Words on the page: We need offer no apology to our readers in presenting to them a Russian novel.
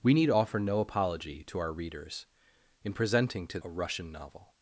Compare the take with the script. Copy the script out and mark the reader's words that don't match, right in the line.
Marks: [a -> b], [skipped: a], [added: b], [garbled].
We need offer no apology to our readers in presenting to [skipped: them] a Russian novel.